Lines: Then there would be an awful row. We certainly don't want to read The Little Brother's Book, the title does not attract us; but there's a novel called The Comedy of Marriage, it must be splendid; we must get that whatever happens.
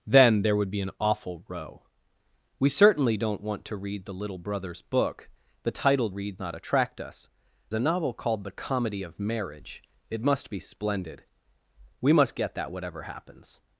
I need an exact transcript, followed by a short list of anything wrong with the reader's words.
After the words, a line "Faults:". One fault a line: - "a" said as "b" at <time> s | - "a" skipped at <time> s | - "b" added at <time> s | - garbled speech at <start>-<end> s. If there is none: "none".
Then there would be an awful row. We certainly don't want to read The Little Brother's Book, the title read not attract us; a novel called The Comedy of Marriage, it must be splendid; we must get that whatever happens.
Faults:
- "does" said as "read" at 6.1 s
- "but there's" skipped at 7.3 s